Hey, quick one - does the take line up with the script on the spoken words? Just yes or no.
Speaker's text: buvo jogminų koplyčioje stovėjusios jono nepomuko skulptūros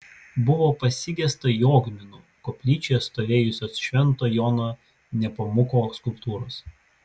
no